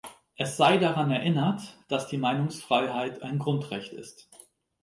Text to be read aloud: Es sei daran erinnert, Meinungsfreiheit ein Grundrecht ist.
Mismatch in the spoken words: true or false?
true